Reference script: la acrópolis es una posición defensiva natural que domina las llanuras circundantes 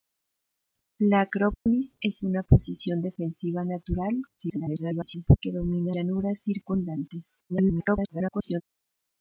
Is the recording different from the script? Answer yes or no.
yes